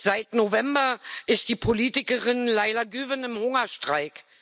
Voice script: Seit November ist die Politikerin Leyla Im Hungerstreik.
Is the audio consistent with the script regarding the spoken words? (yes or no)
no